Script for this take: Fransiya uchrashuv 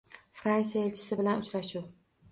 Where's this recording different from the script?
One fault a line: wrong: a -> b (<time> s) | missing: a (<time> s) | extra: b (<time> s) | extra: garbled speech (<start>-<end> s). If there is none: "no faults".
extra: elchisi bilan (0.9 s)